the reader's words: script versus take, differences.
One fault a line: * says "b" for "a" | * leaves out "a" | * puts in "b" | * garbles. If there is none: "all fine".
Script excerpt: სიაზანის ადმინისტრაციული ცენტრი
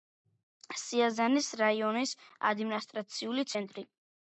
* puts in "რაიონის"